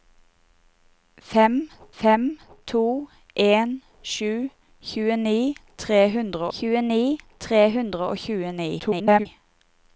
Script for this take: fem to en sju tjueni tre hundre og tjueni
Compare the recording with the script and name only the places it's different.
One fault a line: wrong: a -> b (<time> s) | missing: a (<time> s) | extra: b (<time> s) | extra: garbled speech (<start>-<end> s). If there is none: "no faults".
extra: fem (2.0 s)
extra: tjueni tre hundre (6.6 s)
extra: garbled speech (8.8-9.3 s)